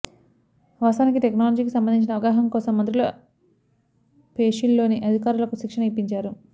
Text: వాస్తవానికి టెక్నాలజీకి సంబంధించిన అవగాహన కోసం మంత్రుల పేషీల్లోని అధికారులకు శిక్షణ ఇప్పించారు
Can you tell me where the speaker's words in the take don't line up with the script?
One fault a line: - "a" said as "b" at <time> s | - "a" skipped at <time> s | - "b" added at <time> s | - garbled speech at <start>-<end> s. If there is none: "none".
none